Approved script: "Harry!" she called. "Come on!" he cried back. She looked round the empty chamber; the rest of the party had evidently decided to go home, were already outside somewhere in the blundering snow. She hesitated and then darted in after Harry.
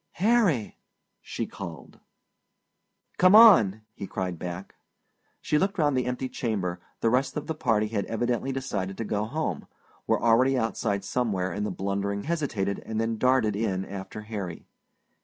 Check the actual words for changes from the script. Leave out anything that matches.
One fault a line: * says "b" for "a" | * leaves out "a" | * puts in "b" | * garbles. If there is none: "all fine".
* leaves out "snow She"